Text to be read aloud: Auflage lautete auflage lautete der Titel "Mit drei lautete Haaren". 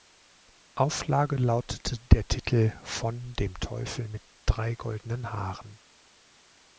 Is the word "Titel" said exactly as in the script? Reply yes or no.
no